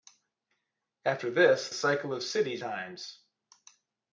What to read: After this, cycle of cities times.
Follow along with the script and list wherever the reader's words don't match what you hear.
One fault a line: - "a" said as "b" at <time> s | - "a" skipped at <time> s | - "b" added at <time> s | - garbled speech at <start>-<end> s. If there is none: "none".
none